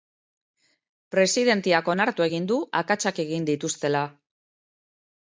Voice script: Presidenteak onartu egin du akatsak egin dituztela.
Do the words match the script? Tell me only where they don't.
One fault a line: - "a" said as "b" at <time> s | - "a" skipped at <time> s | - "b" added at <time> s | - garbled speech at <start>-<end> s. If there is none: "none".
none